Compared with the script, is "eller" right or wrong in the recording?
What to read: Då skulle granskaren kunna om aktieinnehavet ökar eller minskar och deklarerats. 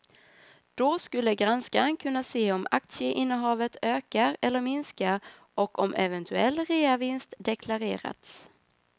right